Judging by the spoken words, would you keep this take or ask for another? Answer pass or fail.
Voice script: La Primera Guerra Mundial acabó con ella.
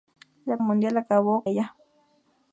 fail